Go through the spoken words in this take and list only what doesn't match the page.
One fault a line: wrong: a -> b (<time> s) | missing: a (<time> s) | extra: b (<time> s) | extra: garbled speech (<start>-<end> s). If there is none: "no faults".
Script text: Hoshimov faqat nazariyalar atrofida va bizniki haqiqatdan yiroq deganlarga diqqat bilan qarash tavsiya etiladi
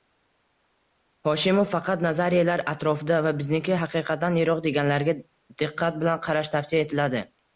no faults